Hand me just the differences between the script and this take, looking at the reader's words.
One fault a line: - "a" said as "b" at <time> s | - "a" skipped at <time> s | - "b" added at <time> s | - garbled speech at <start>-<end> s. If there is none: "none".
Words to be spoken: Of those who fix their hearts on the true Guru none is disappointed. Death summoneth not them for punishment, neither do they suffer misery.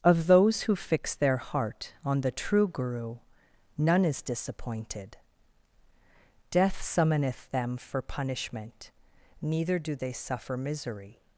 - "hearts" said as "heart" at 1.4 s
- "not" skipped at 7.5 s